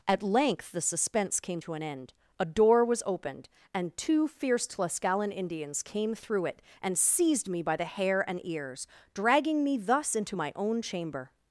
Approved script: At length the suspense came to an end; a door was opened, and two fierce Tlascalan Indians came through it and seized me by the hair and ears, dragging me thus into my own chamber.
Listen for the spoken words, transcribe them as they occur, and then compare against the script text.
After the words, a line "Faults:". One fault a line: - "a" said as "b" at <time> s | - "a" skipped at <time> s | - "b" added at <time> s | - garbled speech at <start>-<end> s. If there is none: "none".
At length the suspense came to an end; a door was opened, and two fierce Tlascalan Indians came through it and seized me by the hair and ears, dragging me thus into my own chamber.
Faults:
none